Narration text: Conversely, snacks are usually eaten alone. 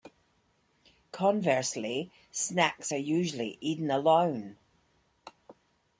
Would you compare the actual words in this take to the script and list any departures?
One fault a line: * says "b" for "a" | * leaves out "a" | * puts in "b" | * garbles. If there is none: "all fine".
all fine